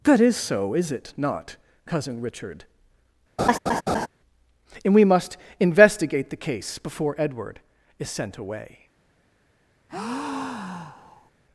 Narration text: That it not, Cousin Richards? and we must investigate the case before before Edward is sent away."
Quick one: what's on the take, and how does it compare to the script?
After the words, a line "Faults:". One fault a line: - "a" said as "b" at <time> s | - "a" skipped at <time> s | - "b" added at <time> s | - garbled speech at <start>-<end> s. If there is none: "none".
That is so, is it not, Cousin Richard? and we must investigate the case before Edward is sent away."
Faults:
- "is so is" added at 0.2 s
- "Richards" said as "Richard" at 2.2 s
- "before" skipped at 7.1 s